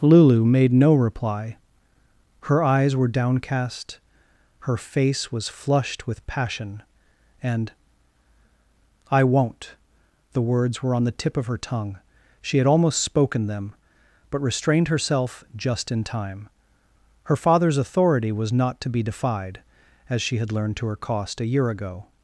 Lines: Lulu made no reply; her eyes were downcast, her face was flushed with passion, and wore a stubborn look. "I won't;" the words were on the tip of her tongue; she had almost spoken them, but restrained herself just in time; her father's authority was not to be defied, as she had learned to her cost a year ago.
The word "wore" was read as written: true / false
false